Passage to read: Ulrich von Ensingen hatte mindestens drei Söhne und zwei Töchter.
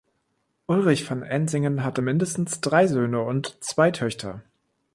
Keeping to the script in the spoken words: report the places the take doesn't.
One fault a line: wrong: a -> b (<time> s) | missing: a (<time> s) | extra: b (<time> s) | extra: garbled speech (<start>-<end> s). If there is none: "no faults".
no faults